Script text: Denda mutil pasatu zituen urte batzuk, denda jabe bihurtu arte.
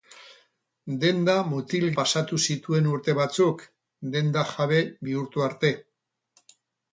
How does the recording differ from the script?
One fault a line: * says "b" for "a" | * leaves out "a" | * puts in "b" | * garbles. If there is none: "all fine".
all fine